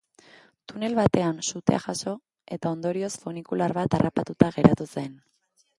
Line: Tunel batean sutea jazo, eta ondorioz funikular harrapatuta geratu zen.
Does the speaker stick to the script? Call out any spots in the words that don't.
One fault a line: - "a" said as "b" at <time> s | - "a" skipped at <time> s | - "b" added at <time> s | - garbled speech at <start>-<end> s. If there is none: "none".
- "bat" added at 3.8 s